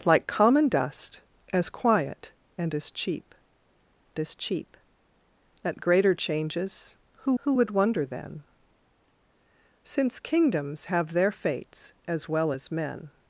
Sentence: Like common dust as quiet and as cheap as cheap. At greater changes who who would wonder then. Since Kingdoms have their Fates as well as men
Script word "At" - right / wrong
right